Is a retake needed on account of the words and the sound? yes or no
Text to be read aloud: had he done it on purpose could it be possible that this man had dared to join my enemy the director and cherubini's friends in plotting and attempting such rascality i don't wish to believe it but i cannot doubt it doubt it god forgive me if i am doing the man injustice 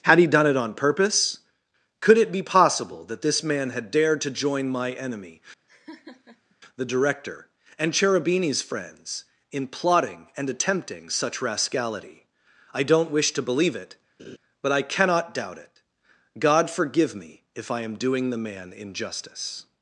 yes